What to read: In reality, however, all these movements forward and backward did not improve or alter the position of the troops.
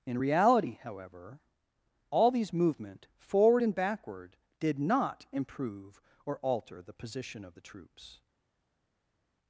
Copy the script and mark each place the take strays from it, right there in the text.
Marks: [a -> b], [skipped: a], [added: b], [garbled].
In reality, however, all these [movements -> movement] forward and backward did not improve or alter the position of the troops.